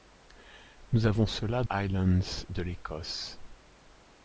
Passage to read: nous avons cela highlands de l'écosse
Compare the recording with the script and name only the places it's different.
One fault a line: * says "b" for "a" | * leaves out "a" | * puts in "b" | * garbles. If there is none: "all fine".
all fine